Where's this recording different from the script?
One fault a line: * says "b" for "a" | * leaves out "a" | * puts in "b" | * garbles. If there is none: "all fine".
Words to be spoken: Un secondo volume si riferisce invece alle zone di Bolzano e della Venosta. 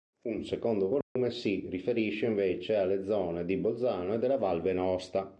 * puts in "Val"